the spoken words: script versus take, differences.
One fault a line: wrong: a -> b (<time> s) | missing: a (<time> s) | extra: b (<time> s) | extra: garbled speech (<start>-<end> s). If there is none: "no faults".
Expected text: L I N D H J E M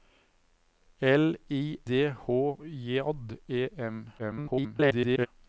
missing: N (1.8 s)
extra: garbled speech (4.2-5.3 s)